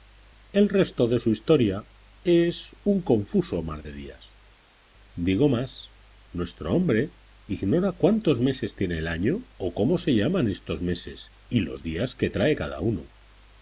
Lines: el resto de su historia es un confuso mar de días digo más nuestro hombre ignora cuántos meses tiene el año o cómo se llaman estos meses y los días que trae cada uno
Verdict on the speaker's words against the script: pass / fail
pass